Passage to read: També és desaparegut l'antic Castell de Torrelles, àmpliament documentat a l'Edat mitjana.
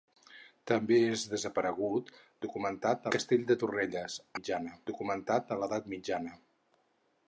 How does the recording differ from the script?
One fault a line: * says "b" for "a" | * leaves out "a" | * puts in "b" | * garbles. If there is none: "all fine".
* says "documentat" for "l'antic"
* says "mitjana" for "àmpliament"